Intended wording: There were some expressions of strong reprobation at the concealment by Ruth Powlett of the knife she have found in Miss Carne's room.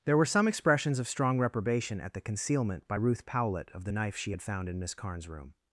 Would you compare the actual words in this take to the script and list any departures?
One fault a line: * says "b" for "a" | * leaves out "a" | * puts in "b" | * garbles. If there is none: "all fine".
* says "had" for "have"